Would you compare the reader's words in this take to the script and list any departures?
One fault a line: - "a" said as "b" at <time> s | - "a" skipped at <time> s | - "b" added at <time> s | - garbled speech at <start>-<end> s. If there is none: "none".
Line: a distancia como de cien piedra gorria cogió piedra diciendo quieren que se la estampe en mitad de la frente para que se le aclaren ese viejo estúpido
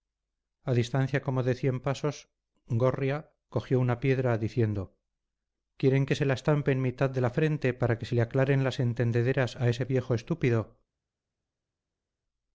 - "piedra" said as "pasos" at 1.8 s
- "una" added at 3.8 s
- "las entendederas a" added at 8.6 s